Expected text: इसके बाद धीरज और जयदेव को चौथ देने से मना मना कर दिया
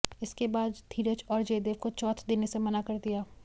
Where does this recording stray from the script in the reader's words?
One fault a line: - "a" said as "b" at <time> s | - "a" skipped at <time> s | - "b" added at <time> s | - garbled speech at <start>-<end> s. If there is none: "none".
- "मना" skipped at 2.8 s